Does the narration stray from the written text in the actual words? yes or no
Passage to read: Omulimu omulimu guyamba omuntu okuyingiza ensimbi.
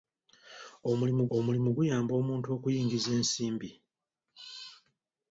no